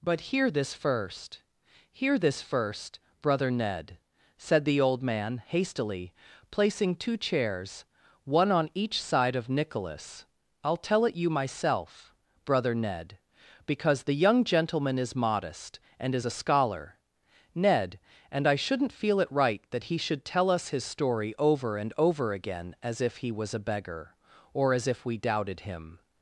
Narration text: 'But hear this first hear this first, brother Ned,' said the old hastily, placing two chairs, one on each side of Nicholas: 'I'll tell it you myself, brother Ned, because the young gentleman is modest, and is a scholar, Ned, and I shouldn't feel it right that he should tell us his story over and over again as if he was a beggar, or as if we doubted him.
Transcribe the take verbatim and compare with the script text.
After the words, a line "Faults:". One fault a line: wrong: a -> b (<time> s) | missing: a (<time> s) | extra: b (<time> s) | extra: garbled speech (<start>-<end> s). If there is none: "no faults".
'But hear this first hear this first, brother Ned,' said the old man, hastily, placing two chairs, one on each side of Nicholas: 'I'll tell it you myself, brother Ned, because the young gentleman is modest, and is a scholar, Ned, and I shouldn't feel it right that he should tell us his story over and over again as if he was a beggar, or as if we doubted him.
Faults:
extra: man (5.0 s)